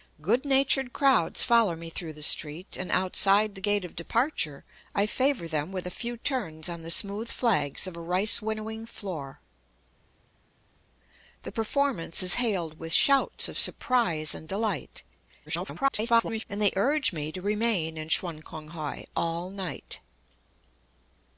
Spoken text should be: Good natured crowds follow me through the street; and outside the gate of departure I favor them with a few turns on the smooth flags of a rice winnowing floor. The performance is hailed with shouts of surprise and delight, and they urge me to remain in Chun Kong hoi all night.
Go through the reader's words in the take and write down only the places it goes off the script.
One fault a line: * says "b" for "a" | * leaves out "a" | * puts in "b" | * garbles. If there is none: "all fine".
* garbles